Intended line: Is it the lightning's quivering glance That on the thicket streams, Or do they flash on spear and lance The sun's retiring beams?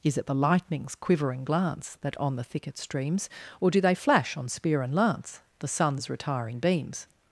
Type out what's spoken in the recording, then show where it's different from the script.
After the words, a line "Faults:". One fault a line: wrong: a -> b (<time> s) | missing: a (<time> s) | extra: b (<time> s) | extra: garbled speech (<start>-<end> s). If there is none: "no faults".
Is it the lightning's quivering glance That on the thicket streams, Or do they flash on spear and lance The sun's retiring beams?
Faults:
no faults